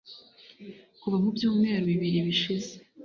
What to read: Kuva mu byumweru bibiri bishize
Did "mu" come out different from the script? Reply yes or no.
no